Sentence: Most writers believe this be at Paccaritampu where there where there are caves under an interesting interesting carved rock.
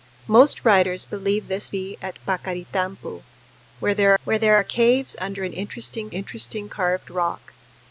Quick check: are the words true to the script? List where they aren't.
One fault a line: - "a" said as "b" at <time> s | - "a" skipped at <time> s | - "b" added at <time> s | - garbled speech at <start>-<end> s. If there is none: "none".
none